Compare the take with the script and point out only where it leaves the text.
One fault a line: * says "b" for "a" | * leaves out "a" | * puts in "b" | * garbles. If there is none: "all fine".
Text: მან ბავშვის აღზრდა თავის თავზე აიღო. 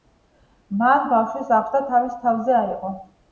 all fine